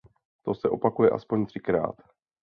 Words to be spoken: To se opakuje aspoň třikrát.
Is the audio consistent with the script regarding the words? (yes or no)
yes